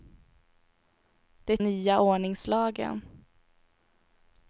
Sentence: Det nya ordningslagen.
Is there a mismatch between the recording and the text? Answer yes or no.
no